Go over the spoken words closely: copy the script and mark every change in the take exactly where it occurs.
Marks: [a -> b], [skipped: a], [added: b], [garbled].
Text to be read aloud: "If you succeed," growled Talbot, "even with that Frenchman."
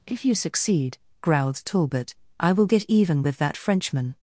"If you succeed," growled Talbot, [added: I will get] "even with that Frenchman."